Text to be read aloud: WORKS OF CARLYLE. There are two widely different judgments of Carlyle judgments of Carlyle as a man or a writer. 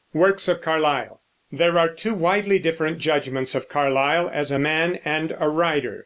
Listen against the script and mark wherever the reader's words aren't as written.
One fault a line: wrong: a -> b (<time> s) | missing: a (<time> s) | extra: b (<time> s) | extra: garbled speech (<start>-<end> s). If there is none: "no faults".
missing: judgments of Carlyle (4.3 s)
wrong: or -> and (5.0 s)